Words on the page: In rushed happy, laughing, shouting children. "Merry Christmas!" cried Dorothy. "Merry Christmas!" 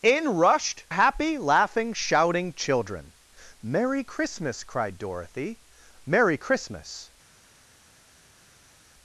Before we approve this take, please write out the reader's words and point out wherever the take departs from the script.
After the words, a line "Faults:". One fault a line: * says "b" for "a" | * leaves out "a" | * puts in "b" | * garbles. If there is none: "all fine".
In rushed happy, laughing, shouting children. "Merry Christmas!" cried Dorothy. "Merry Christmas!"
Faults:
all fine